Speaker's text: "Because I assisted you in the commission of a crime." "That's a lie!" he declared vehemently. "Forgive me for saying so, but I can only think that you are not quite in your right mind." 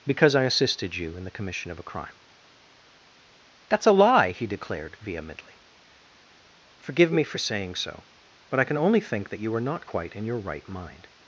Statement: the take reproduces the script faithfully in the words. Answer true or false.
true